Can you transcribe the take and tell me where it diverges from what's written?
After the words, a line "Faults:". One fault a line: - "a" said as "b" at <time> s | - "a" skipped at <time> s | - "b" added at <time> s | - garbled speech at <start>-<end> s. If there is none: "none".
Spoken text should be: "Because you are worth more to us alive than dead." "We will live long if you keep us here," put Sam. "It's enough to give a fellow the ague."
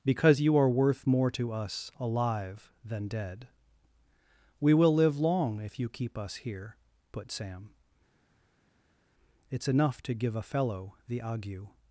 "Because you are worth more to us alive than dead." "We will live long if you keep us here," put Sam. "It's enough to give a fellow the ague."
Faults:
none